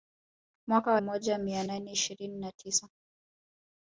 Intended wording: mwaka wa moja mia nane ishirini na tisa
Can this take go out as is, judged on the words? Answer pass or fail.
pass